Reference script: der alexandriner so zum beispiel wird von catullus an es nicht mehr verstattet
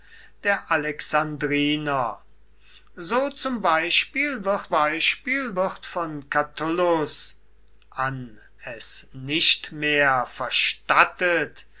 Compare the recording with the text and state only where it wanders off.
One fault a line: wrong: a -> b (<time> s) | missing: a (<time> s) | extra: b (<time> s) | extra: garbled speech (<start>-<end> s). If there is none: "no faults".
extra: beispiel wird (4.7 s)